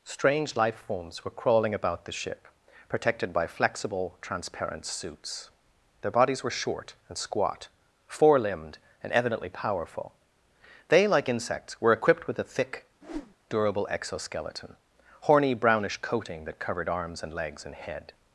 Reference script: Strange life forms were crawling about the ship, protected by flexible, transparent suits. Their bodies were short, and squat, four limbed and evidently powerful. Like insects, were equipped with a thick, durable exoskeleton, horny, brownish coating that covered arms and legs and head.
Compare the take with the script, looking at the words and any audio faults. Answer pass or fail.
fail